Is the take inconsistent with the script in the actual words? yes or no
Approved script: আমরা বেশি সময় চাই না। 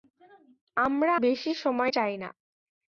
no